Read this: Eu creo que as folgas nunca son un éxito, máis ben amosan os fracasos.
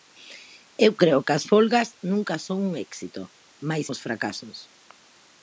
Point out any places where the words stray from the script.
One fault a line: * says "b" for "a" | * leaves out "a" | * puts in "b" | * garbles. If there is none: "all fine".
* leaves out "ben amosan"